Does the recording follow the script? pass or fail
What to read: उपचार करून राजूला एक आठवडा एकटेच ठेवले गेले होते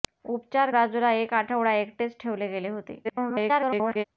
fail